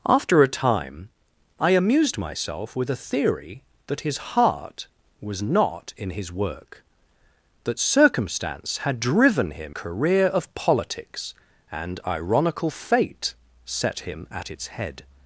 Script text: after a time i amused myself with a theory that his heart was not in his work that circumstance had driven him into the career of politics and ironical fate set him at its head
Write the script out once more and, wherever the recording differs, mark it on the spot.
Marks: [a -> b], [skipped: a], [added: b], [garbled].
after a time i amused myself with a theory that his heart was not in his work that circumstance had driven him [skipped: into the] career of politics and ironical fate set him at its head